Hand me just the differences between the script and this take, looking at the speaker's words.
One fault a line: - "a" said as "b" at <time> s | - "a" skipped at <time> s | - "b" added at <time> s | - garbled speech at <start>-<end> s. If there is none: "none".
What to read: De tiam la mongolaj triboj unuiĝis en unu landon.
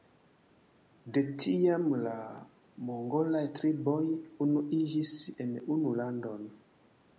none